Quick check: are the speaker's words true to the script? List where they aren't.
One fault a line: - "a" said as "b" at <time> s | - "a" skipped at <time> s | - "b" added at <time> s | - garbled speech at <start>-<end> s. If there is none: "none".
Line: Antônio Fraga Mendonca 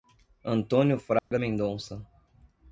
none